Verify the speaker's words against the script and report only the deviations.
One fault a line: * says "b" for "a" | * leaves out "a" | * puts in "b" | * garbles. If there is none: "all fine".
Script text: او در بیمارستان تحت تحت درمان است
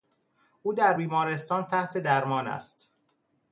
* leaves out "تحت"